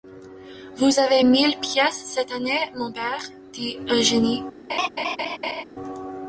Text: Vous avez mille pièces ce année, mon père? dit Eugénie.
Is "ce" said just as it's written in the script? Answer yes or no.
no